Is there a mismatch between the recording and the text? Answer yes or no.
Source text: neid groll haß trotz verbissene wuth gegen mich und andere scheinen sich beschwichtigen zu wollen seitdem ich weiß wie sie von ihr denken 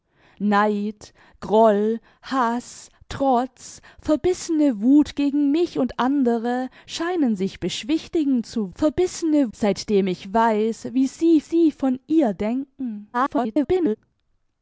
yes